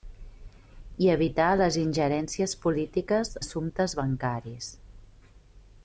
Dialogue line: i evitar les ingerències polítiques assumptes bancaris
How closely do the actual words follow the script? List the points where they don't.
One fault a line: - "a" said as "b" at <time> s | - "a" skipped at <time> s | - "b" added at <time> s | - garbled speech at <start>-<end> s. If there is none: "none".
none